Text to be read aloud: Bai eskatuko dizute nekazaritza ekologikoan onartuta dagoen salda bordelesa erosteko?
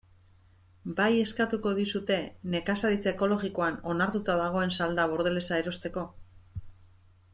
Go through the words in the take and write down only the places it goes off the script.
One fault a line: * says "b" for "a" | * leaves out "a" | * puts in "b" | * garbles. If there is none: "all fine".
all fine